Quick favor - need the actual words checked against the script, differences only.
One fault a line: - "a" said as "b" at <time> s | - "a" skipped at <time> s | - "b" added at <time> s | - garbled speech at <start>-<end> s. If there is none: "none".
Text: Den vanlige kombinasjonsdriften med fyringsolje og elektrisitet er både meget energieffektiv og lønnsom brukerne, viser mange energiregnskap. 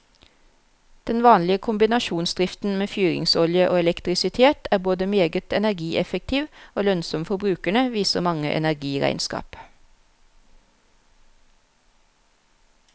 - "for" added at 7.2 s